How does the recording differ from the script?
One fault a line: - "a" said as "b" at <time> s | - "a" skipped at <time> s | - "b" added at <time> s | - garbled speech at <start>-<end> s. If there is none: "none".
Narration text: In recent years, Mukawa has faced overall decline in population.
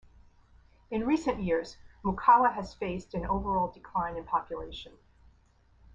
- "an" added at 3.1 s